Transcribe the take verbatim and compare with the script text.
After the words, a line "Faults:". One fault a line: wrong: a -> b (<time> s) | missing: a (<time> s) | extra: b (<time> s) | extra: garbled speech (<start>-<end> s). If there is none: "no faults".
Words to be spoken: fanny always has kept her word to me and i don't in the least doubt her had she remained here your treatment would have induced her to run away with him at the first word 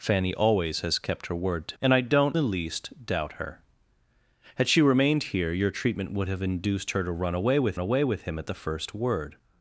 fanny always has kept her word to and i don't the least doubt her had she remained here your treatment would have induced her to run away with away with him at the first word
Faults:
missing: me (1.8 s)
missing: in (2.4 s)
extra: away with (7.8 s)